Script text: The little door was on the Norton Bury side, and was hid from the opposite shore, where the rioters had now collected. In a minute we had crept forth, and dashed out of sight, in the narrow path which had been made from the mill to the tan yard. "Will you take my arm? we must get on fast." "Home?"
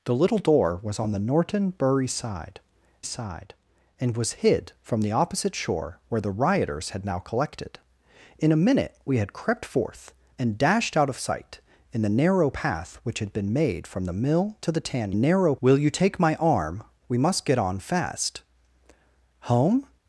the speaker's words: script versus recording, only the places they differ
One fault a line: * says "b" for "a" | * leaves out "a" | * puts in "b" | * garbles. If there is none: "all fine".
* puts in "side"
* says "narrow" for "yard"